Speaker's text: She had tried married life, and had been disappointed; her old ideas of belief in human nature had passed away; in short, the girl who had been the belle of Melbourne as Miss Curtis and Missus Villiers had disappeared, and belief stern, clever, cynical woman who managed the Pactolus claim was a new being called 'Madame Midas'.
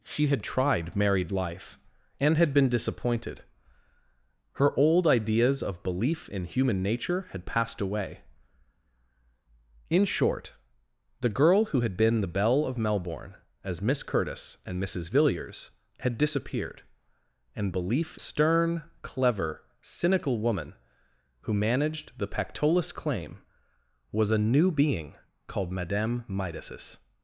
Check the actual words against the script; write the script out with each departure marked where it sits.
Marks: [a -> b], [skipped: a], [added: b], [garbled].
She had tried married life, and had been disappointed; her old ideas of belief in human nature had passed away; in short, the girl who had been the belle of Melbourne as Miss Curtis and Missus Villiers had disappeared, and belief stern, clever, cynical woman who managed the Pactolus claim was a new being called 'Madame Midas'.